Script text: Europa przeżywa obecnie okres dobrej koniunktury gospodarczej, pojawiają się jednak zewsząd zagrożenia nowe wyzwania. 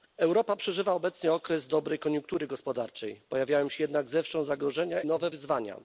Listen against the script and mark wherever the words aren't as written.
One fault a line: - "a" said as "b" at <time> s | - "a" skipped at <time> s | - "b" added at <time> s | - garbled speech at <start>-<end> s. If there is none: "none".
none